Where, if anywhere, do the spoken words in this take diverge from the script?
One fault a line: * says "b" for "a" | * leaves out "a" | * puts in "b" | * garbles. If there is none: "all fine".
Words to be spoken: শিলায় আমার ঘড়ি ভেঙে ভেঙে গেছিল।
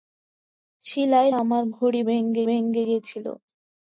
all fine